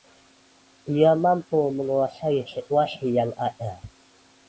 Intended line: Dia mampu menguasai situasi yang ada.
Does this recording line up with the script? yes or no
yes